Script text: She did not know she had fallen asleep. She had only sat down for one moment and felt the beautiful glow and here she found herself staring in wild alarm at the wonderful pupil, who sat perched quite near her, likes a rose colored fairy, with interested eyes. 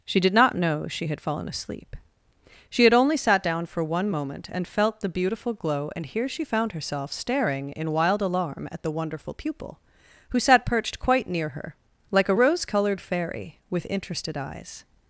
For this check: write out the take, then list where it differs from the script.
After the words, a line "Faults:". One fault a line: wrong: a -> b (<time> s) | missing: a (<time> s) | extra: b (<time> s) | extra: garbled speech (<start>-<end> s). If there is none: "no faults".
She did not know she had fallen asleep. She had only sat down for one moment and felt the beautiful glow and here she found herself staring in wild alarm at the wonderful pupil, who sat perched quite near her, like a rose colored fairy, with interested eyes.
Faults:
wrong: likes -> like (12.1 s)